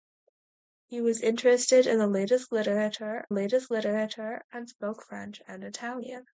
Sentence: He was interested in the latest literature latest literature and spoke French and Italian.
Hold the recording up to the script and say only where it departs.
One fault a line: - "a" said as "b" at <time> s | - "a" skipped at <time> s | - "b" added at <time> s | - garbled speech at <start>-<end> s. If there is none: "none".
none